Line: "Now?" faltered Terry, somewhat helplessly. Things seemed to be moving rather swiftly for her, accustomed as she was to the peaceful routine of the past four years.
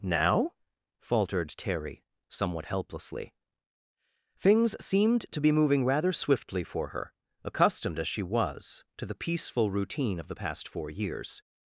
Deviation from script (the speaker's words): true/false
false